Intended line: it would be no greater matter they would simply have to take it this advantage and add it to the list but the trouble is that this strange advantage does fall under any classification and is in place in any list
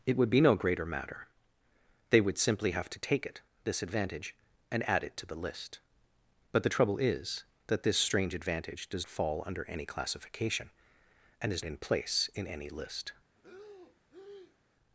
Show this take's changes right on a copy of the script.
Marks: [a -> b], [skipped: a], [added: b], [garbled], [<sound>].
it would be no greater matter they would simply have to take it this advantage and add it to the list but the trouble is that this strange advantage does fall under any classification and is in place in any list [breath]